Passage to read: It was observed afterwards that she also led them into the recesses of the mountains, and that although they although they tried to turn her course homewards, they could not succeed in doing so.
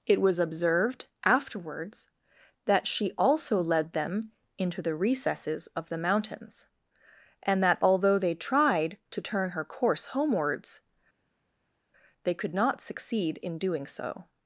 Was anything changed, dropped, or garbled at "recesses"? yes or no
no